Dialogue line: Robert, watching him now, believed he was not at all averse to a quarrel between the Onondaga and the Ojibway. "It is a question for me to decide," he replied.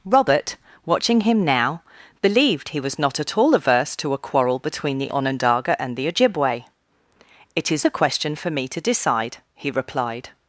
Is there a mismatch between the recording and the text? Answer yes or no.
no